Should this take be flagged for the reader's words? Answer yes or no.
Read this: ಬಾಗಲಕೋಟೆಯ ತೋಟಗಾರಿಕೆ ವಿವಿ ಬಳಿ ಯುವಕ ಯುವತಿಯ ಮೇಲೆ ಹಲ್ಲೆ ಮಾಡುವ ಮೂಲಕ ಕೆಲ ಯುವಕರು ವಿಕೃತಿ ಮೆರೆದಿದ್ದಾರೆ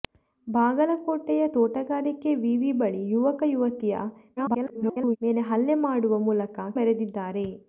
yes